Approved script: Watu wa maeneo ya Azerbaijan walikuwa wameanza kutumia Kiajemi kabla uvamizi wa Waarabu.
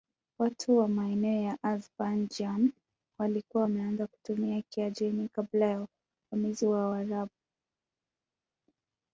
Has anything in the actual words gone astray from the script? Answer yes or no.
yes